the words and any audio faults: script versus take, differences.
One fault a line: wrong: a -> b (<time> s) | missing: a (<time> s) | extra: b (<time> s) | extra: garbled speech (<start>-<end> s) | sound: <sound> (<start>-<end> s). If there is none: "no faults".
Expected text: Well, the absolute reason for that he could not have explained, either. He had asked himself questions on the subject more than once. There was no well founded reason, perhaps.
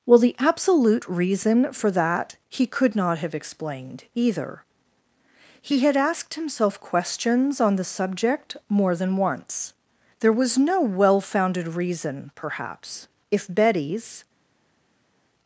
extra: If Betty's (13.3 s)